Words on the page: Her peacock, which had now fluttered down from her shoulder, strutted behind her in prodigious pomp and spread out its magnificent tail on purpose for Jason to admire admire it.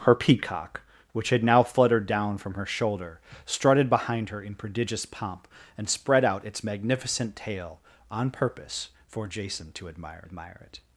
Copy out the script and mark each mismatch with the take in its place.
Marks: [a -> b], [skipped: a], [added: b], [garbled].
Her peacock, which had now fluttered down from her shoulder, strutted behind her in prodigious pomp and spread out its magnificent tail on purpose for Jason to admire admire it.